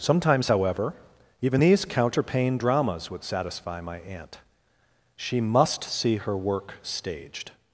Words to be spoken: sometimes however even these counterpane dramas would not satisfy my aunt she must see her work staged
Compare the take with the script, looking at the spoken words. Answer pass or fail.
fail